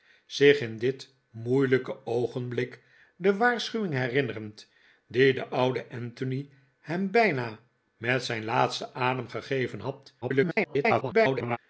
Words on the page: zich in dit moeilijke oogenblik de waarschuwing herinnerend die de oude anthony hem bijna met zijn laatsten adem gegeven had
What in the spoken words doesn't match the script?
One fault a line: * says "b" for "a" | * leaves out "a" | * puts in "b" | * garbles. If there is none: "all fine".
* garbles